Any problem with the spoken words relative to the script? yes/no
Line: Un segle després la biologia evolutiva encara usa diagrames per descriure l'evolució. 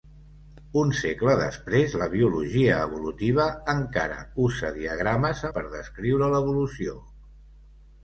no